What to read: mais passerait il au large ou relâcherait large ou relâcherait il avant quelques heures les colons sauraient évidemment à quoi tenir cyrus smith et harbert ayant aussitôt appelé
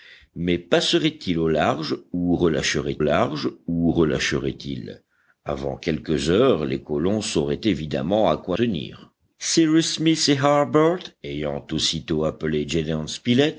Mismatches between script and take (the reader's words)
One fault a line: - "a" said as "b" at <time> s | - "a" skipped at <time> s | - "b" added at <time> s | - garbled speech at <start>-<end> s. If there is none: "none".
none